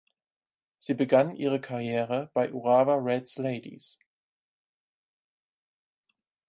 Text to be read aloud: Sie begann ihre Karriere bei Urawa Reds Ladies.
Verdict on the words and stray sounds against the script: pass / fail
pass